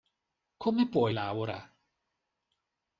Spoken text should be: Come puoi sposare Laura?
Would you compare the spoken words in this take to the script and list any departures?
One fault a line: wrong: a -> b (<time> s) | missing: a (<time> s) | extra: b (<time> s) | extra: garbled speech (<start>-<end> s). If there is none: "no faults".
missing: sposare (1.1 s)